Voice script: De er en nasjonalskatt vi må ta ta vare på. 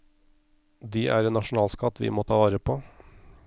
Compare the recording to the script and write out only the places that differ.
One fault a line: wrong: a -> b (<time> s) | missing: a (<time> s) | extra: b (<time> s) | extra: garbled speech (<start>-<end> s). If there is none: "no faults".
missing: ta (2.4 s)